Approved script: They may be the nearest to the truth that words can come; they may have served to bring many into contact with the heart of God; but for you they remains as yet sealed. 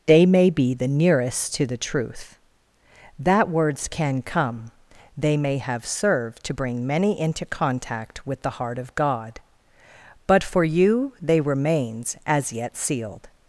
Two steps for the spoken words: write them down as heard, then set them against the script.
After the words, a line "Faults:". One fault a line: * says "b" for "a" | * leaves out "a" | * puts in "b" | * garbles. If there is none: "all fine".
They may be the nearest to the truth that words can come; they may have served to bring many into contact with the heart of God; but for you they remains as yet sealed.
Faults:
all fine